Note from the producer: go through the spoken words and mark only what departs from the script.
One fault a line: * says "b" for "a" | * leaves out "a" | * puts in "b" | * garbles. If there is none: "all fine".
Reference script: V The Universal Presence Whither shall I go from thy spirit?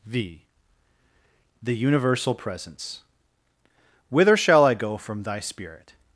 all fine